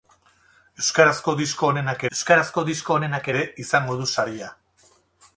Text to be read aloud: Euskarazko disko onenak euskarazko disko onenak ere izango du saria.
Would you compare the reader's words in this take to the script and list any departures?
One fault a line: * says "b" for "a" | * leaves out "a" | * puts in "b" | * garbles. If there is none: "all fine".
all fine